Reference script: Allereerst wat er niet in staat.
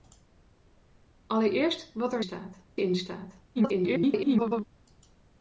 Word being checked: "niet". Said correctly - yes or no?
no